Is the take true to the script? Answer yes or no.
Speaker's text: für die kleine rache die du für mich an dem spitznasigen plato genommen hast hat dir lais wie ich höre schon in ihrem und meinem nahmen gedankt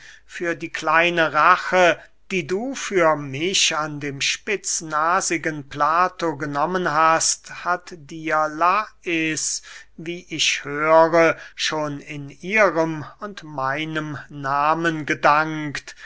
yes